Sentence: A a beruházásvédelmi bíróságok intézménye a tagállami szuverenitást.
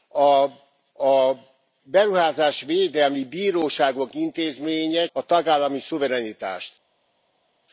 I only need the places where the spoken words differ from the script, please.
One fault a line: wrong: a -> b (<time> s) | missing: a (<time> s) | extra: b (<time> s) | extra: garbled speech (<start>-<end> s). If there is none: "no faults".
no faults